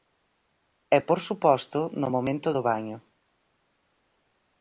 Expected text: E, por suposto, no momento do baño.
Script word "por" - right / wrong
right